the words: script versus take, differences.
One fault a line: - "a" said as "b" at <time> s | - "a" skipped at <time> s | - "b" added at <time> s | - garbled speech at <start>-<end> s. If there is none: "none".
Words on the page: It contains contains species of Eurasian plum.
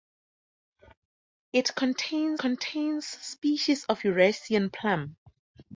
none